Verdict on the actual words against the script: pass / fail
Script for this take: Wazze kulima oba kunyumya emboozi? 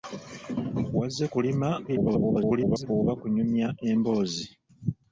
fail